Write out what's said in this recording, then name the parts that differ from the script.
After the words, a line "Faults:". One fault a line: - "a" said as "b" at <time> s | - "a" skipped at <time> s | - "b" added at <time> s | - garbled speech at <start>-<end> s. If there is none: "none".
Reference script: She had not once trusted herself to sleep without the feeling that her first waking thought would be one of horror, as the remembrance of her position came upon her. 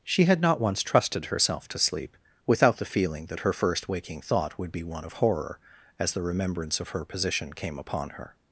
She had not once trusted herself to sleep without the feeling that her first waking thought would be one of horror, as the remembrance of her position came upon her.
Faults:
none